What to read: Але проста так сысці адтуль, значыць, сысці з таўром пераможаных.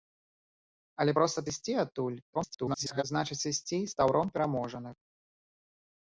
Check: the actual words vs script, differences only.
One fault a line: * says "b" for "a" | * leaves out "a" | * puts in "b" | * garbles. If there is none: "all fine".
* leaves out "так"
* garbles